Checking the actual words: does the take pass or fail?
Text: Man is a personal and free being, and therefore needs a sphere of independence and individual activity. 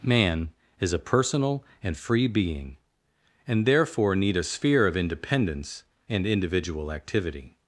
fail